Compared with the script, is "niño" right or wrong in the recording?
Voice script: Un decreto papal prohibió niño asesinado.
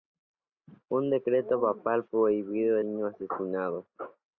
right